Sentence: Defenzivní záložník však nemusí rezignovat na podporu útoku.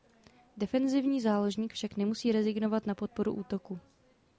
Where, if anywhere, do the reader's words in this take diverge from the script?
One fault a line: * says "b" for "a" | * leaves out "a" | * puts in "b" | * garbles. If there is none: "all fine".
all fine